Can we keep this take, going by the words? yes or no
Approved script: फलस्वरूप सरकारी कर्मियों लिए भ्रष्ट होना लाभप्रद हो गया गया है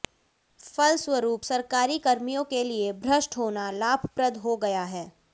no